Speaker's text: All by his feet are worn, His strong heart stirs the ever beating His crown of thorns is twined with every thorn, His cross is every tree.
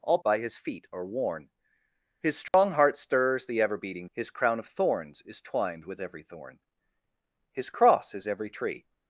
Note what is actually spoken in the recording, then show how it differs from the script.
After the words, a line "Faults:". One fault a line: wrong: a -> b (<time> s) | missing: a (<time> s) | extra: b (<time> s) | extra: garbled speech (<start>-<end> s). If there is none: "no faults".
All by his feet are worn, His strong heart stirs the ever beating His crown of thorns is twined with every thorn, His cross is every tree.
Faults:
no faults